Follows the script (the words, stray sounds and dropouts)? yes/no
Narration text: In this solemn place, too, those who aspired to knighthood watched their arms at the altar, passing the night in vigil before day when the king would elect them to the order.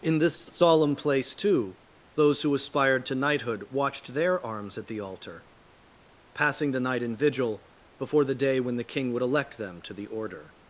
no